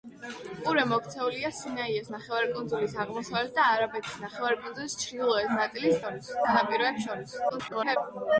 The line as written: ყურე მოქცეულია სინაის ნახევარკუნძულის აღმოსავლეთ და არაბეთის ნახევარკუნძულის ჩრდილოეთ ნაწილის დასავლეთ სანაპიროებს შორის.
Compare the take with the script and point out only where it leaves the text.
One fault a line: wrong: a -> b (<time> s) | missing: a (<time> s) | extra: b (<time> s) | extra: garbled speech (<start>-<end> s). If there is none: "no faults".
wrong: დასავლეთ -> შორის (6.0 s)
extra: garbled speech (7.5-8.0 s)